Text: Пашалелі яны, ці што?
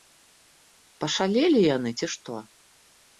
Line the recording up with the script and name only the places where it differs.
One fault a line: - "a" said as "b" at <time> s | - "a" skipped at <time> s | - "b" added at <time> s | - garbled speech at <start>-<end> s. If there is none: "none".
none